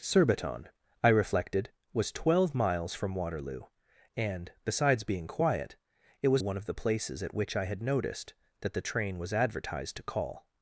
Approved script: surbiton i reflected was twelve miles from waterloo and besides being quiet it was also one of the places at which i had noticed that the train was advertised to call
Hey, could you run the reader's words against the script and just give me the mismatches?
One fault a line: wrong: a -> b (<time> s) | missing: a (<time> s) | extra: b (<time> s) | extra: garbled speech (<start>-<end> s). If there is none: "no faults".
missing: also (6.4 s)